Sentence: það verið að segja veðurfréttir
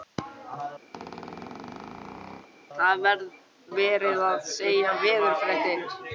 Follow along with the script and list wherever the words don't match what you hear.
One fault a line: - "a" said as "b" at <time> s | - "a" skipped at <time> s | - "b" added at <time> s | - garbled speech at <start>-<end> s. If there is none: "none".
none